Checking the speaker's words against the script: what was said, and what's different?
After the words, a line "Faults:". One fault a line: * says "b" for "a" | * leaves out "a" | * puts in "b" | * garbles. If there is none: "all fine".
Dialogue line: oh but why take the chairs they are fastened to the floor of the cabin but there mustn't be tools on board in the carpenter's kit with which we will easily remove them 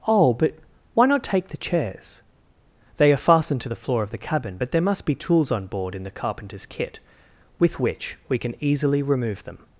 oh but why not take the chairs they are fastened to the floor of the cabin but there must be tools on board in the carpenter's kit with which we can easily remove them
Faults:
* puts in "not"
* says "must" for "mustn't"
* says "can" for "will"